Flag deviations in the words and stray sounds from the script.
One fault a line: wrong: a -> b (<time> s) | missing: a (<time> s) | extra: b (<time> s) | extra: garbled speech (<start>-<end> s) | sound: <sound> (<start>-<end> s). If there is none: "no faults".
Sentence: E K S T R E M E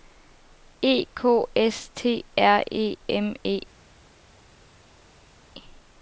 no faults